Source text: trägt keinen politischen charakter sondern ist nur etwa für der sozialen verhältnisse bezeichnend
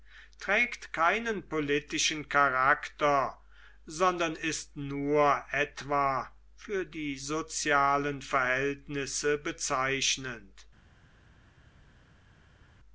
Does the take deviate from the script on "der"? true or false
true